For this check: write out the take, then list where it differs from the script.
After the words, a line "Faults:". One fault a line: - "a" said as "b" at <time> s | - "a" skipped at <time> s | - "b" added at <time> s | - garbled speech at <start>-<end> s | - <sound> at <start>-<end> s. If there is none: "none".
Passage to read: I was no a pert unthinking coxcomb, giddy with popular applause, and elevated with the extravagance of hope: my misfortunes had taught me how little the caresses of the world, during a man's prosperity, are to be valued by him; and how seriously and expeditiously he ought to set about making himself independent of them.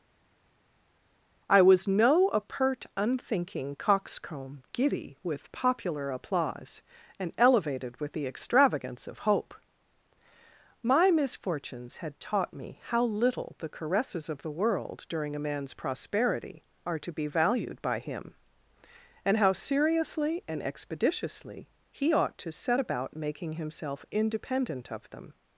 I was no a pert unthinking coxcomb, giddy with popular applause, and elevated with the extravagance of hope: my misfortunes had taught me how little the caresses of the world, during a man's prosperity, are to be valued by him; and how seriously and expeditiously he ought to set about making himself independent of them.
Faults:
none